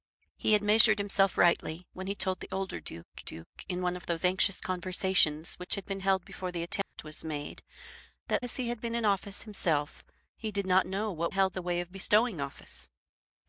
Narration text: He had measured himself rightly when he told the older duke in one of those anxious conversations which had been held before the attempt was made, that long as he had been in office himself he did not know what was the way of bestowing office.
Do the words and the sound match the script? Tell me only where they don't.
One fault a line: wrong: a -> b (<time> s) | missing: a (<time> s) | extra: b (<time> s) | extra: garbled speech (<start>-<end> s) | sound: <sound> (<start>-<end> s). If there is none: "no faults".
extra: duke (3.2 s)
sound: dropout (6.8-6.9 s)
missing: long (8.5 s)
wrong: was -> held (11.3 s)